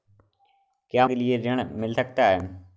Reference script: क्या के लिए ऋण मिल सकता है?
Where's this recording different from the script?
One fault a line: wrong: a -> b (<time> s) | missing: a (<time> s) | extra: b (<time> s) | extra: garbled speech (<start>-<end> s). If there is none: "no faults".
no faults